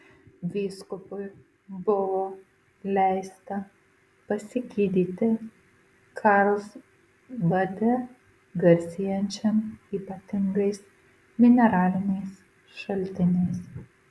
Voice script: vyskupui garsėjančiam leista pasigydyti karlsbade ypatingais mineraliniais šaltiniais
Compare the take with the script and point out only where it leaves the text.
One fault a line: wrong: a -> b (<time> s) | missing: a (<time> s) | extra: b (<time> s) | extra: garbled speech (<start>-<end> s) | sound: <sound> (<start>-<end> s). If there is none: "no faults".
wrong: garsėjančiam -> buvo (1.9 s)
extra: garsėjančiam (8.7 s)